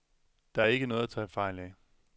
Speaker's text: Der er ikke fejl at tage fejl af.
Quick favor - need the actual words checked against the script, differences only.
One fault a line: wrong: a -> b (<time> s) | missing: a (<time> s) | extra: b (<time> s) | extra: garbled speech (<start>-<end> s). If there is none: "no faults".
wrong: fejl -> noget (0.9 s)